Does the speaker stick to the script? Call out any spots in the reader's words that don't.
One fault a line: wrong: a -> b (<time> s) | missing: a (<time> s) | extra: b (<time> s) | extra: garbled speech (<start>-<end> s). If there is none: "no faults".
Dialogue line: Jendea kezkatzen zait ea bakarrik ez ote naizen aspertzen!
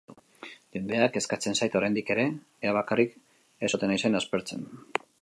extra: oraindik ere (1.8 s)